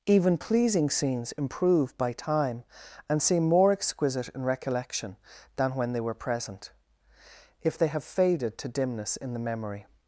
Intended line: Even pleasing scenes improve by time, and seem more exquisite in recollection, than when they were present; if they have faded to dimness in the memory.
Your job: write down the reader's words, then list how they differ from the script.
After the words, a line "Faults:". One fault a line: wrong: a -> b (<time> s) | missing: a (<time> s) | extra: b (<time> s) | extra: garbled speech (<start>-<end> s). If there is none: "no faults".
Even pleasing scenes improve by time, and seem more exquisite in recollection, than when they were present; if they have faded to dimness in the memory.
Faults:
no faults